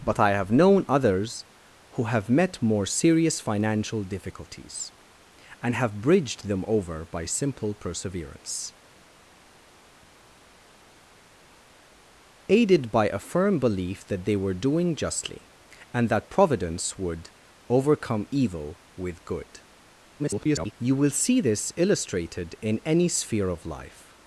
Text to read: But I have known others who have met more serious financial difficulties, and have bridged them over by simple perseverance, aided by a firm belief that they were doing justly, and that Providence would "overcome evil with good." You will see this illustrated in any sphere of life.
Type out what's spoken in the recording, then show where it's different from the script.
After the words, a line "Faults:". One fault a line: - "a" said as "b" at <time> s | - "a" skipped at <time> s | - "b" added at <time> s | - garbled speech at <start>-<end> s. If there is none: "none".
But I have known others who have met more serious financial difficulties, and have bridged them over by simple perseverance, aided by a firm belief that they were doing justly, and that Providence would "overcome evil with good." [garbled] You will see this illustrated in any sphere of life.
Faults:
- garbled speech at 20.2-20.7 s